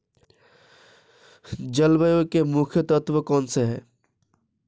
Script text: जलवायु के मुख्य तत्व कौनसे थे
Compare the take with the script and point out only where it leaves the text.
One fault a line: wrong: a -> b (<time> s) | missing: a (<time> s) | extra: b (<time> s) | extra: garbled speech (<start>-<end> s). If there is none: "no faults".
wrong: थे -> हैं (3.6 s)